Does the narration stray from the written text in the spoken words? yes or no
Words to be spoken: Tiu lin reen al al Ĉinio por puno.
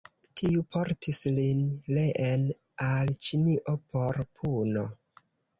yes